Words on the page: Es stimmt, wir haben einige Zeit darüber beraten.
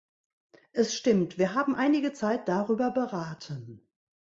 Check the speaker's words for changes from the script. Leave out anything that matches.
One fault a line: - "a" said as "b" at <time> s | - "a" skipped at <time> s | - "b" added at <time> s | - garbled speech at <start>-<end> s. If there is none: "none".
none